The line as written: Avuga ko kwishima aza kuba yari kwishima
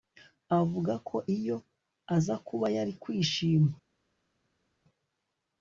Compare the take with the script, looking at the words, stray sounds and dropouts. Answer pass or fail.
fail